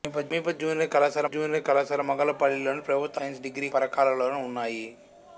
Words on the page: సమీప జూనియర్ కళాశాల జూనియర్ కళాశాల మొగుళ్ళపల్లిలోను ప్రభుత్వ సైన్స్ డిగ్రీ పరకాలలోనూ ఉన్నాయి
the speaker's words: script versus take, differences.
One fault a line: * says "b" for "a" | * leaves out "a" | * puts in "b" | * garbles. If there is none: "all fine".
all fine